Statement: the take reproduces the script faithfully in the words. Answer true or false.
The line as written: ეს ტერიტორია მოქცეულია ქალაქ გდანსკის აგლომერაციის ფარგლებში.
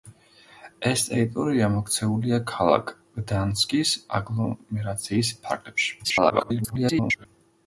false